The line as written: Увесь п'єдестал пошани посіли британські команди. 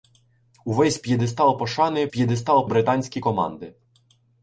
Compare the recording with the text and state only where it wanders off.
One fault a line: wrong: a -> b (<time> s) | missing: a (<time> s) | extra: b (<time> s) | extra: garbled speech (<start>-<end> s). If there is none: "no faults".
wrong: посіли -> п'єдестал (2.1 s)